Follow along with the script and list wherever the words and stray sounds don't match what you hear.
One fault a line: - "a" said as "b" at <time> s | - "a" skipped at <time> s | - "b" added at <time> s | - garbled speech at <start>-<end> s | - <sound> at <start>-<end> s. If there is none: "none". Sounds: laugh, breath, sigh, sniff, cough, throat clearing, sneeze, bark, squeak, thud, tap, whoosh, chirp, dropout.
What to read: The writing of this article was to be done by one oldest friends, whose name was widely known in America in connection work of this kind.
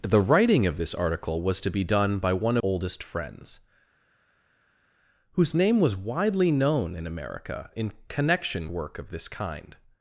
none